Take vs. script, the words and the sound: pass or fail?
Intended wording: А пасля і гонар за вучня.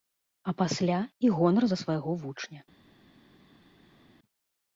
fail